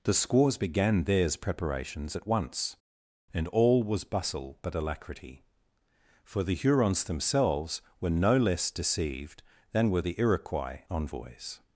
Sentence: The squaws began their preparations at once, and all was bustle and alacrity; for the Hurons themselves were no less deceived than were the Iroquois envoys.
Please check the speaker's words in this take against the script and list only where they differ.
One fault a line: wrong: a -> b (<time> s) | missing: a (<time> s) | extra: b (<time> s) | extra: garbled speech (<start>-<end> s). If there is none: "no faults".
wrong: their -> theirs (1.0 s)
wrong: and -> but (4.6 s)